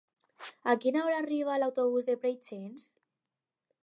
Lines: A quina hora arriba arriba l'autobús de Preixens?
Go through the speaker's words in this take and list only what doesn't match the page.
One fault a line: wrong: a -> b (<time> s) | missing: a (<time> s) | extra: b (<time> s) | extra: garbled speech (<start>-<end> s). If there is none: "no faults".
missing: arriba (1.6 s)